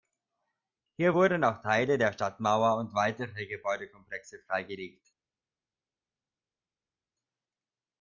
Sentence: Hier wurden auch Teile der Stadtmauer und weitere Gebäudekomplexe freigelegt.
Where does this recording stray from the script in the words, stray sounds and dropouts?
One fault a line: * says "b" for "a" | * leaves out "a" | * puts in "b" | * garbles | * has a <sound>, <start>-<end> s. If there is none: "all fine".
all fine